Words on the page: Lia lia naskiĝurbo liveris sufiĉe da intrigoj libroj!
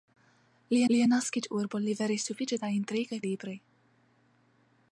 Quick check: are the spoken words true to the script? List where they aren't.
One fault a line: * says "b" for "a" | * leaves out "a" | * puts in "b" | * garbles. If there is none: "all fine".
all fine